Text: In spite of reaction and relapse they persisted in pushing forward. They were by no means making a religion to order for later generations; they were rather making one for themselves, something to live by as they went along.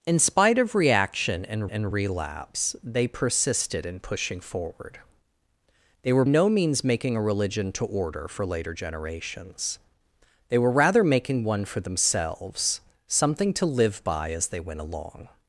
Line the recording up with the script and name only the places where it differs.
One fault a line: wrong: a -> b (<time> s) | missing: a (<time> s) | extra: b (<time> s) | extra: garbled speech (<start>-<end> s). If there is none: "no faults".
extra: and (1.7 s)
missing: by (6.2 s)